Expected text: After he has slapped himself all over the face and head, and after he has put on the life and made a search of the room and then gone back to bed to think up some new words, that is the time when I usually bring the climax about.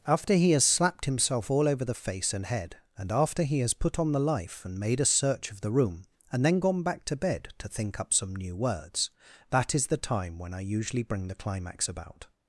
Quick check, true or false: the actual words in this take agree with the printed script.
true